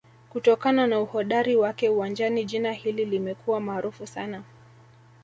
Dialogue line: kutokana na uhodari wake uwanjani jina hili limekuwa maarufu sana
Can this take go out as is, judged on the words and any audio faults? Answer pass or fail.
pass